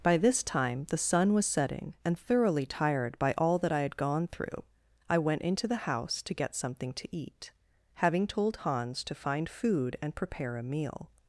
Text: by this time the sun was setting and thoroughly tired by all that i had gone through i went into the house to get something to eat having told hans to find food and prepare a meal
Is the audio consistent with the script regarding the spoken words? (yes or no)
yes